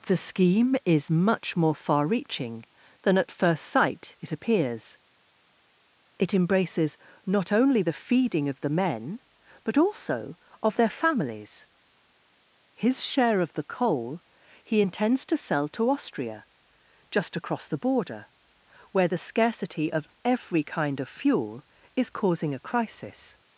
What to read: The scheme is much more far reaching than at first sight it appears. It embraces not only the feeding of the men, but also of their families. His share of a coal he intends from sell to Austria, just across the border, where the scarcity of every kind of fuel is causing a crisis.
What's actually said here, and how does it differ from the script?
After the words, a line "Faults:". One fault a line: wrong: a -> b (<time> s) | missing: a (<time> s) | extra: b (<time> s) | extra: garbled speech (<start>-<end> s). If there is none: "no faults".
The scheme is much more far reaching than at first sight it appears. It embraces not only the feeding of the men, but also of their families. His share of the coal he intends to sell to Austria, just across the border, where the scarcity of every kind of fuel is causing a crisis.
Faults:
wrong: a -> the (13.5 s)
wrong: from -> to (15.3 s)